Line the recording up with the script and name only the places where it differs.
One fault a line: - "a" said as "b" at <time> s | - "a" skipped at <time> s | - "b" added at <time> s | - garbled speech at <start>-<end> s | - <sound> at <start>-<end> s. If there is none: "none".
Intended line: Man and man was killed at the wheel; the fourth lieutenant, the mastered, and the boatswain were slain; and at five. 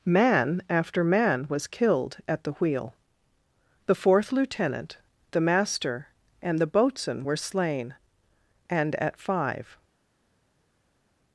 - "and" said as "after" at 0.7 s
- "mastered" said as "master" at 5.4 s